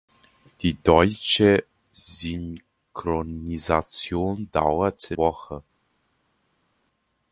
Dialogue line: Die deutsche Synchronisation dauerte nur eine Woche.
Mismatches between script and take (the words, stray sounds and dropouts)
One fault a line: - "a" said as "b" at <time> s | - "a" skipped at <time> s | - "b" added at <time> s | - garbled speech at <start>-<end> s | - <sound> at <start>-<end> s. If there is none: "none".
- "nur eine" skipped at 5.2 s